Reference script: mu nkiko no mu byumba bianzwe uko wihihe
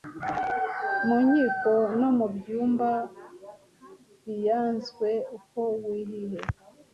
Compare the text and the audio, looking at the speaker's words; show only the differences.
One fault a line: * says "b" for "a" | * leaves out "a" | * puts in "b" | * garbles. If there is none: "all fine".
all fine